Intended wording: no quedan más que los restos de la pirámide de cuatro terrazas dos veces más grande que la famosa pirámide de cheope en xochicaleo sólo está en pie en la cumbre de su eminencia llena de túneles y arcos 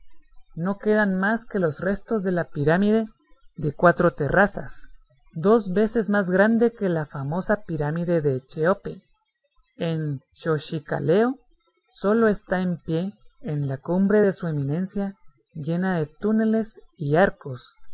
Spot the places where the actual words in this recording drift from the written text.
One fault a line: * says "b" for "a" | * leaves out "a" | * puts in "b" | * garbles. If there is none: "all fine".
all fine